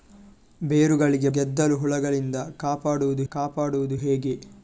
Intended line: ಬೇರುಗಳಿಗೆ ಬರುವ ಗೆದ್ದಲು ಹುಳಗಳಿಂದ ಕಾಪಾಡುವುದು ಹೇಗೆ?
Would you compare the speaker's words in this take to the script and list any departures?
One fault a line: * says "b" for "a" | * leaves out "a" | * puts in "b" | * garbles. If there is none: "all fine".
* leaves out "ಬರುವ"
* puts in "ಕಾಪಾಡುವುದು"